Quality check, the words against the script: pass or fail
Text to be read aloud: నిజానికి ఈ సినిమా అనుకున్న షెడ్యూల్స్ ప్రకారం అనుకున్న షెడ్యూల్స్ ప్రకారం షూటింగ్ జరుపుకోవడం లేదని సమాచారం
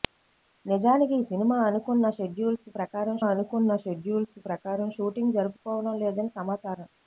pass